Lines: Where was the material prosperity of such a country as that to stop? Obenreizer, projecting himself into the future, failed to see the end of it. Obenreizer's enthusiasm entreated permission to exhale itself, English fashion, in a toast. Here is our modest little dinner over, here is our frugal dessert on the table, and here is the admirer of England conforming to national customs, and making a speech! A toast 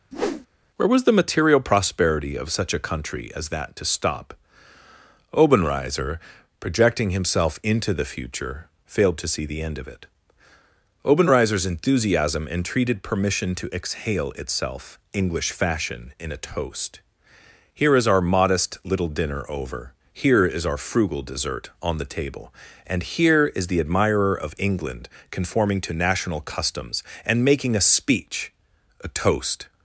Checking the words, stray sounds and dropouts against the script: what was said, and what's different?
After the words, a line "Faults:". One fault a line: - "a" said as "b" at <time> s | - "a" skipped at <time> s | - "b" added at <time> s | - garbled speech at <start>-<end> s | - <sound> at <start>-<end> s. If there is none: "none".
Where was the material prosperity of such a country as that to stop? Obenreizer, projecting himself into the future, failed to see the end of it. Obenreizer's enthusiasm entreated permission to exhale itself, English fashion, in a toast. Here is our modest little dinner over, here is our frugal dessert on the table, and here is the admirer of England conforming to national customs, and making a speech! A toast
Faults:
- whoosh at 0.1-0.5 s